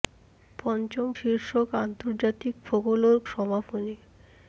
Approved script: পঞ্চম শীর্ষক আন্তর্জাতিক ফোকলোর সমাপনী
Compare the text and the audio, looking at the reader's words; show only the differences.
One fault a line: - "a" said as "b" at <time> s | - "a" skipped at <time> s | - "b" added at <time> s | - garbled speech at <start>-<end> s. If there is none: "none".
none